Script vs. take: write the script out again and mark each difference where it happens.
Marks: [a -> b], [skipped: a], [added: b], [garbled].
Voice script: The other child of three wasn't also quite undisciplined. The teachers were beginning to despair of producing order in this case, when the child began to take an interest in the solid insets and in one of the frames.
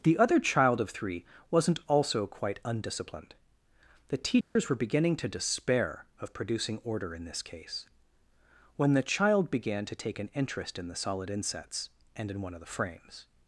The other child of three wasn't also quite undisciplined. The teachers were beginning to despair of producing order in this case, when the child began to take an interest in the solid insets and in one of the frames.